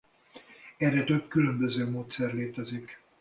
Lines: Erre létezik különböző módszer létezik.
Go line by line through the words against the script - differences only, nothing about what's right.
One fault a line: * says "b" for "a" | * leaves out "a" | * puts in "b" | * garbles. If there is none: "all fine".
* says "több" for "létezik"